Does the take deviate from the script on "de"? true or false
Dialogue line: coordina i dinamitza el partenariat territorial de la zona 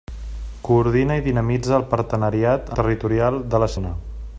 false